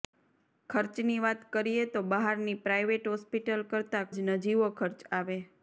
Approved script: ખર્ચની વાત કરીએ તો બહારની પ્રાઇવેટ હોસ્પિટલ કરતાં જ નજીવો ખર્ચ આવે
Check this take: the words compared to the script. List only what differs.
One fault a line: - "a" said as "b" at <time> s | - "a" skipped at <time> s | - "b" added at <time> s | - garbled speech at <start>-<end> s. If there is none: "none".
none